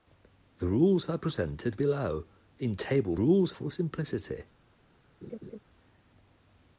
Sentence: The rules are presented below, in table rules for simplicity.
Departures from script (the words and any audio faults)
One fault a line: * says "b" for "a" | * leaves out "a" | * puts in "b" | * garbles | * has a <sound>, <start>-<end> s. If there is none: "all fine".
* has a laugh, 5.2-5.6 s